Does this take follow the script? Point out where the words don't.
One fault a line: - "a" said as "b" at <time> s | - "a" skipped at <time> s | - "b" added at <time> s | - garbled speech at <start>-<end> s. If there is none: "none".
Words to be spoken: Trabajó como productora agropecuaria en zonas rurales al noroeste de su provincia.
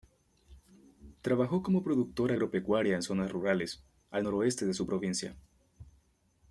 none